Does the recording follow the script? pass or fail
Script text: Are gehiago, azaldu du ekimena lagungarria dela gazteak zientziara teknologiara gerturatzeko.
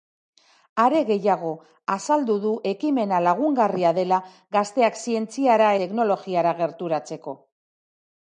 pass